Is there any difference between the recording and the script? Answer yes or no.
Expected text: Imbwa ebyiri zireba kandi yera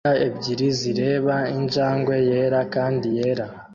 yes